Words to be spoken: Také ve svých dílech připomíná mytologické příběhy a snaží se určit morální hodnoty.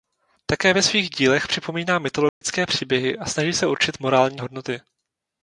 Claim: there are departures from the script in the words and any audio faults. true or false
true